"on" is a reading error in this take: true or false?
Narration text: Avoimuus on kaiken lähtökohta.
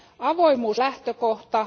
true